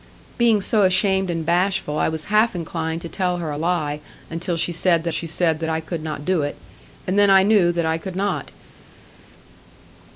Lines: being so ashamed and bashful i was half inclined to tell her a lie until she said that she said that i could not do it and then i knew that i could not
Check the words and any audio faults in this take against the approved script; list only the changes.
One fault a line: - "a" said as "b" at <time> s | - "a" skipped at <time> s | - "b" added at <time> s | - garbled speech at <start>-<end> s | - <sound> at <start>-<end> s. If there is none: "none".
none